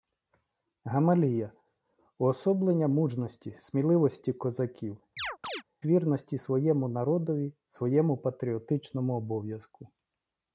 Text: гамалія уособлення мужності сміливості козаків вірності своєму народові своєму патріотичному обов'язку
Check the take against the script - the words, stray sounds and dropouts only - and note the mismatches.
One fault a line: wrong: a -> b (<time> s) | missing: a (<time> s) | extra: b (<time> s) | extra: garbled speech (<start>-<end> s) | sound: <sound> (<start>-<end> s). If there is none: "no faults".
sound: chirp (5.2-5.6 s)